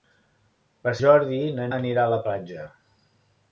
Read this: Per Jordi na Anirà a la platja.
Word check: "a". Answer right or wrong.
right